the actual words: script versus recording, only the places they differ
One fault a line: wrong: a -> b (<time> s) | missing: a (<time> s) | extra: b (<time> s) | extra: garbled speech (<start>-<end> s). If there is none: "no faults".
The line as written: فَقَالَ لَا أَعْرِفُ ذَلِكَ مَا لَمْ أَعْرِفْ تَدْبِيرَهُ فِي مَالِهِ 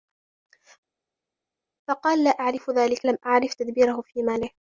missing: مَا (3.0 s)